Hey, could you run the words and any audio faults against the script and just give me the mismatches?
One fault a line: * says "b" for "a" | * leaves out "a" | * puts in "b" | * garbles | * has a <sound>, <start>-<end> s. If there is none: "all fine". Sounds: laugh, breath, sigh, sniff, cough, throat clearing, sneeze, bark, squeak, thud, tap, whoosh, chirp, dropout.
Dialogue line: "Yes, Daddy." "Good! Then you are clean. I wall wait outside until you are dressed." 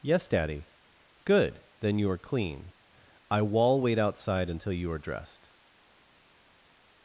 all fine